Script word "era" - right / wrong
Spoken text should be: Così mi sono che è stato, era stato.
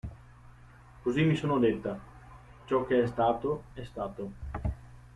wrong